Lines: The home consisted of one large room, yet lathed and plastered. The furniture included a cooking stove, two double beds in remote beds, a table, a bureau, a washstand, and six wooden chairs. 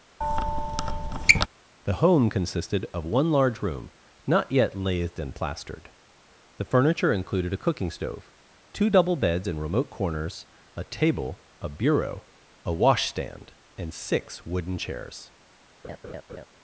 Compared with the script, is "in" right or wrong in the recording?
right